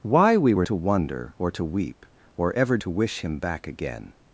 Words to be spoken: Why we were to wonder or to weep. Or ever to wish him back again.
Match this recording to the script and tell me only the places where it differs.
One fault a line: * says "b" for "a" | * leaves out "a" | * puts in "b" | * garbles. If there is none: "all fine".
all fine